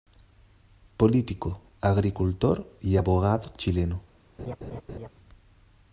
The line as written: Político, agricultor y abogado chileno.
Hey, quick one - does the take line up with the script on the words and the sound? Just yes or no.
no